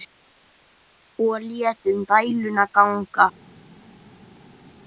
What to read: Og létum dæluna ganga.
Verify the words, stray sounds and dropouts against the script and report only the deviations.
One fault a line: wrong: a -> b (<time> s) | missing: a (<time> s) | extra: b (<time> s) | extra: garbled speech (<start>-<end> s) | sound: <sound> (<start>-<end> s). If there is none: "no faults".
no faults